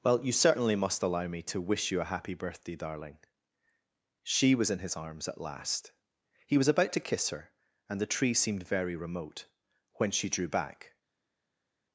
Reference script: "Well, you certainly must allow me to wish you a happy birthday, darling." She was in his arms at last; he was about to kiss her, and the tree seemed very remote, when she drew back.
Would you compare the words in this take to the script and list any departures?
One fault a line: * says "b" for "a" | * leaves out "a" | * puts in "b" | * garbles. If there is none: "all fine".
all fine